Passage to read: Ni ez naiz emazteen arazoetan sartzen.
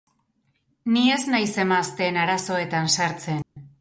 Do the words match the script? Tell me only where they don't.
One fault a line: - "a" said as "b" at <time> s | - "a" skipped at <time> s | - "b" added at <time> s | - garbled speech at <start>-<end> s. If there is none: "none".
none